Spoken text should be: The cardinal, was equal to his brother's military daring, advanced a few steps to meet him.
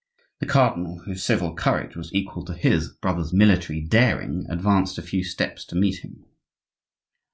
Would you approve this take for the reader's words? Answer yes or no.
no